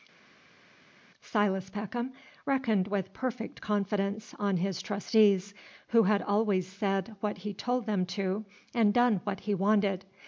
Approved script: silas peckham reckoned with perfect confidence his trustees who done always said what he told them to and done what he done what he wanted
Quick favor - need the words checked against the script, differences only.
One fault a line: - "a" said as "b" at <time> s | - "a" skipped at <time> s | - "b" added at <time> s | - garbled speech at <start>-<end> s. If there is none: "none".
- "on" added at 4.4 s
- "done" said as "had" at 6.0 s
- "done what he" skipped at 9.5 s